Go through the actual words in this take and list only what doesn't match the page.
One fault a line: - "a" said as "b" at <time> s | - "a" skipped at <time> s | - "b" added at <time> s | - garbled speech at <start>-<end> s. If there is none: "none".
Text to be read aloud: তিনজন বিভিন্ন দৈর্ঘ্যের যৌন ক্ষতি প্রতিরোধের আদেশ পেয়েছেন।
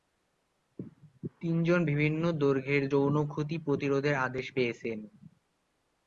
none